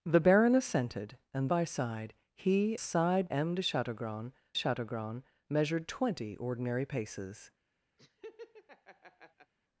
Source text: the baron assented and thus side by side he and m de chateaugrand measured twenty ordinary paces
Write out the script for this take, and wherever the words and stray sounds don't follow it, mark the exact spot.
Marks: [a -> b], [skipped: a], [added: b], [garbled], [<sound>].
the baron assented and [skipped: thus side] by side he [and -> side] m de chateaugrand [added: chateaugrand] measured twenty ordinary paces [laugh]